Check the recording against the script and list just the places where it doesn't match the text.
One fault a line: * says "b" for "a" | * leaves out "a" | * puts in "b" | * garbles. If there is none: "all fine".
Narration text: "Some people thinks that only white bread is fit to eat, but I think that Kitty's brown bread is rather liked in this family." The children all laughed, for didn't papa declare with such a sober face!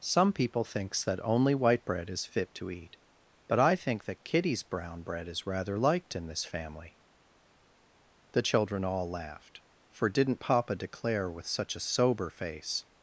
all fine